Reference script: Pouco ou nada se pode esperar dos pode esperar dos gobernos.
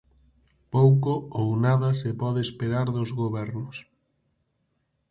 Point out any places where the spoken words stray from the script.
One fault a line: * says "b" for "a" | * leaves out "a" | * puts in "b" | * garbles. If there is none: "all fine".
* leaves out "pode esperar dos"